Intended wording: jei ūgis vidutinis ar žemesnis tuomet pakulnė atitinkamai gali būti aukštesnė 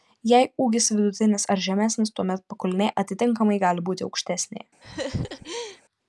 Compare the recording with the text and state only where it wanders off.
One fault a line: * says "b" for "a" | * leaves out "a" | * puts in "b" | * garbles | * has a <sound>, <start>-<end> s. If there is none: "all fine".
* has a laugh, 4.8-5.8 s